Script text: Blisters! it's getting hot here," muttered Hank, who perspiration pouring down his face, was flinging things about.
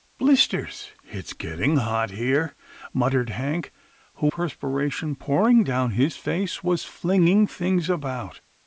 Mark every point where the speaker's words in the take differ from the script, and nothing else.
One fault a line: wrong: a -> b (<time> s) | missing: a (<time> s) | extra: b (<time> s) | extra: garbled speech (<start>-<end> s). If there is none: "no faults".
no faults